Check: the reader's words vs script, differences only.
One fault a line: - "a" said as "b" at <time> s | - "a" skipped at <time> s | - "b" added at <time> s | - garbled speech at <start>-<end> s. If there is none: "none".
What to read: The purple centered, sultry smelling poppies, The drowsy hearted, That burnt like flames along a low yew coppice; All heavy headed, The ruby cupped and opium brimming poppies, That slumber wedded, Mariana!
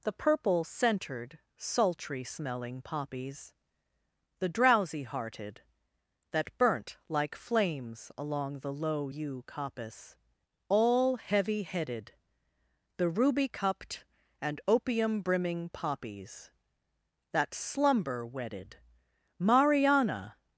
- "a" said as "the" at 8.6 s